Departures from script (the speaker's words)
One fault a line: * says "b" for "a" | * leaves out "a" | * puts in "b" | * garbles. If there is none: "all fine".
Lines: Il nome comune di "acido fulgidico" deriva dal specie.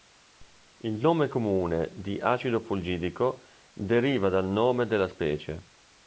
* puts in "nome della"